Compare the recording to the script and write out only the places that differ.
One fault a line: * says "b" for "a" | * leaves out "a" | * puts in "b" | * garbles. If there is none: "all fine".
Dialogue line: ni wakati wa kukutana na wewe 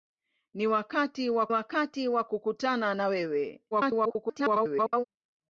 * puts in "wakati wa"
* garbles